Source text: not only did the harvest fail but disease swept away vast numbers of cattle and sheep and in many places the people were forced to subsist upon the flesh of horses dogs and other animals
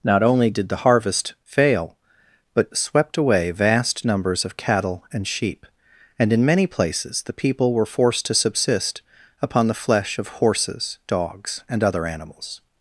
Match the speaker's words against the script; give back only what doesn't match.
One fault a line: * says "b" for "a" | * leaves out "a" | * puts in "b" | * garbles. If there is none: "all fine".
* leaves out "disease"